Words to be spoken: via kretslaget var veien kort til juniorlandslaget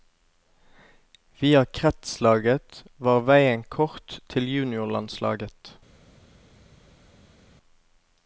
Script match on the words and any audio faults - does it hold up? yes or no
yes